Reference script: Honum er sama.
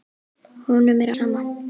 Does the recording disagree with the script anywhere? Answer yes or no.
no